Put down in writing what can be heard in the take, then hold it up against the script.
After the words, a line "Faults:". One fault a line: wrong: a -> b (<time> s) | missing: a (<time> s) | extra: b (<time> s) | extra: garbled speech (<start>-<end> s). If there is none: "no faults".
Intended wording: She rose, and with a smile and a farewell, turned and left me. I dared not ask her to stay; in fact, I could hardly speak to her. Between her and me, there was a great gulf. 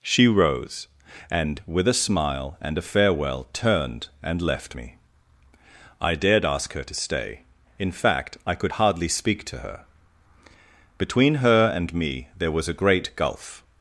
She rose, and with a smile and a farewell, turned and left me. I dared ask her to stay; in fact, I could hardly speak to her. Between her and me, there was a great gulf.
Faults:
missing: not (6.4 s)